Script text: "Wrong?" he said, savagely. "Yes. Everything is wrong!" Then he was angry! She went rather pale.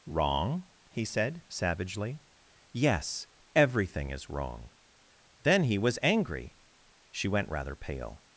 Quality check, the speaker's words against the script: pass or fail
pass